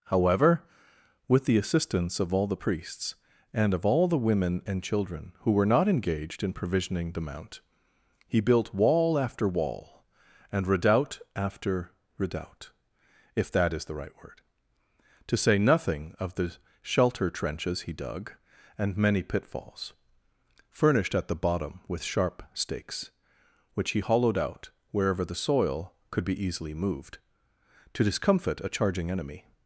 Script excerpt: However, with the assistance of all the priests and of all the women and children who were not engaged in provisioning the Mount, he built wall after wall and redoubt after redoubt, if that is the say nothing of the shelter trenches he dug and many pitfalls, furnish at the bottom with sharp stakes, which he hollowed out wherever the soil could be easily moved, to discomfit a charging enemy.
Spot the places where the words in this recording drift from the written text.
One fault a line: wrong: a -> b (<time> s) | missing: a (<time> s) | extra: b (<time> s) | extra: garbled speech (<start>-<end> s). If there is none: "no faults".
extra: right word to (13.9 s)
wrong: furnish -> furnished (20.7 s)